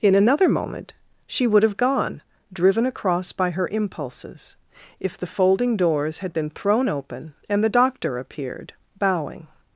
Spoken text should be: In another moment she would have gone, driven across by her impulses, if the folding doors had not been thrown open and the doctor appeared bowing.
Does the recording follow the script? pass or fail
fail